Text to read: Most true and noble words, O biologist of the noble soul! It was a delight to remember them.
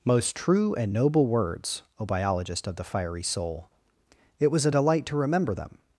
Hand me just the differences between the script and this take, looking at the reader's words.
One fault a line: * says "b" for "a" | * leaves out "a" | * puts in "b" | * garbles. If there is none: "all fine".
* says "fiery" for "noble"